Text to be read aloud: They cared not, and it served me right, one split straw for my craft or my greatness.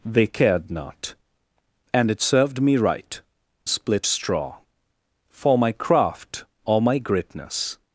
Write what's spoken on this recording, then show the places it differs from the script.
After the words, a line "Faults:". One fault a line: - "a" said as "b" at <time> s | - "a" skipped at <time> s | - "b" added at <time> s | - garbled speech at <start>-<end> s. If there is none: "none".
They cared not, and it served me right, split straw for my craft or my greatness.
Faults:
- "one" skipped at 3.2 s